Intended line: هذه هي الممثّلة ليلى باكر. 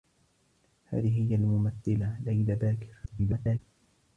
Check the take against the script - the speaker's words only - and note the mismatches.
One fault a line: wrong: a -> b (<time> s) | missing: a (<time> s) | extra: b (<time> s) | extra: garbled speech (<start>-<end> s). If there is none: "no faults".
extra: garbled speech (3.1-3.6 s)